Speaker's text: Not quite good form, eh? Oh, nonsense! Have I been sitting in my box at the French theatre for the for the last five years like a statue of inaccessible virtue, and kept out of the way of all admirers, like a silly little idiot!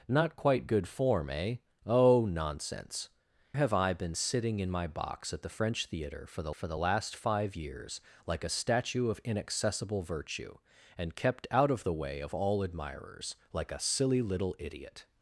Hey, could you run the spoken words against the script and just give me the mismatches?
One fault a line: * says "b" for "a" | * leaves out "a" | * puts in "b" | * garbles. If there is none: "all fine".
all fine